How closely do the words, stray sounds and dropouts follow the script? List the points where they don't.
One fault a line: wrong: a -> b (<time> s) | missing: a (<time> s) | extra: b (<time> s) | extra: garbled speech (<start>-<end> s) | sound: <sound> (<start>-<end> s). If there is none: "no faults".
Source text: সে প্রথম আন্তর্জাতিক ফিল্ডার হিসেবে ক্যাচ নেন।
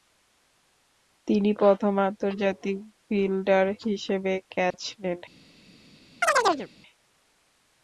wrong: সে -> তিনি (1.3 s)
sound: dropout (4.7-4.7 s)
sound: chirp (6.2-6.7 s)